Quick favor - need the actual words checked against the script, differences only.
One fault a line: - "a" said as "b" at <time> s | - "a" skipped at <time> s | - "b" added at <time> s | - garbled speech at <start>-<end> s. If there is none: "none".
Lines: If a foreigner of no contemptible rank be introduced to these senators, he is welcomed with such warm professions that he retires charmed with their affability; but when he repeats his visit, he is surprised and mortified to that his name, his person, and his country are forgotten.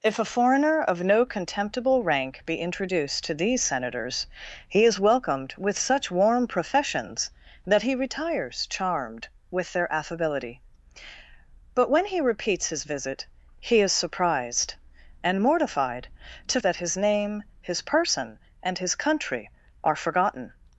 none